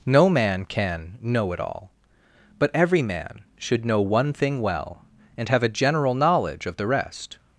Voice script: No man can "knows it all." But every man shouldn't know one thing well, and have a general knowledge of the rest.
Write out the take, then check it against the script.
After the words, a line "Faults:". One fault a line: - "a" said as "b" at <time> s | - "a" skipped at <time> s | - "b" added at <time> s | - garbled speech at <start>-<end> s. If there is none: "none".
No man can "know it all." But every man should know one thing well, and have a general knowledge of the rest.
Faults:
- "knows" said as "know" at 1.2 s
- "shouldn't" said as "should" at 3.6 s